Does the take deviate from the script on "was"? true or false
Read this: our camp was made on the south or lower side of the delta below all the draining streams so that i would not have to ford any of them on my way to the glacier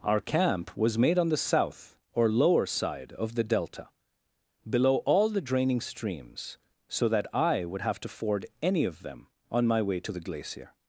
false